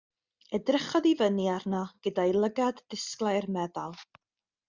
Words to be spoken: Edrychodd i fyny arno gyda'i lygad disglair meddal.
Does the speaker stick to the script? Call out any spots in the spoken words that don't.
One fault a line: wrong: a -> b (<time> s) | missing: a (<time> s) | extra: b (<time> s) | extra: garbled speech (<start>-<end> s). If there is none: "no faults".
no faults